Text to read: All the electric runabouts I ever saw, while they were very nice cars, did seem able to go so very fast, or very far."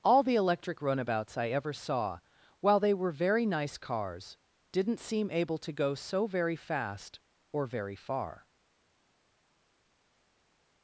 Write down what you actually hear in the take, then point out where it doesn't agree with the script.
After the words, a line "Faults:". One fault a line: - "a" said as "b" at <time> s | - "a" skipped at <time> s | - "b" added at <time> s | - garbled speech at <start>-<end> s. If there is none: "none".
All the electric runabouts I ever saw, while they were very nice cars, didn't seem able to go so very fast, or very far."
Faults:
- "did" said as "didn't" at 4.7 s